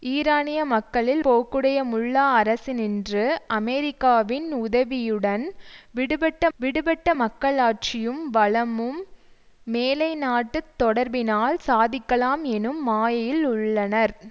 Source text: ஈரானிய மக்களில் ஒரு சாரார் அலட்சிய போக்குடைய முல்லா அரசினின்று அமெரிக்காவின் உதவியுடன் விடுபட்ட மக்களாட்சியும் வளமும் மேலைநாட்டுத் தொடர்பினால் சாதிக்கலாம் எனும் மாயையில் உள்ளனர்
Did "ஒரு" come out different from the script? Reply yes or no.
yes